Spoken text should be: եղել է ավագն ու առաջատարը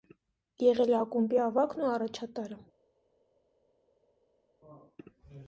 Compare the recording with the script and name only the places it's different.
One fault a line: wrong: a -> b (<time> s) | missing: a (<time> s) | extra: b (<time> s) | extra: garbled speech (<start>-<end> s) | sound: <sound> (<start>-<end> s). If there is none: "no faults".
extra: ակումբի (1.0 s)